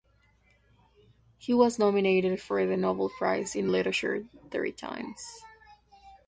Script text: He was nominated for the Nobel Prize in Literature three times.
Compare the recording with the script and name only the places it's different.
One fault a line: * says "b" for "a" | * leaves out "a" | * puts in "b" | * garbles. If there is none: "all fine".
all fine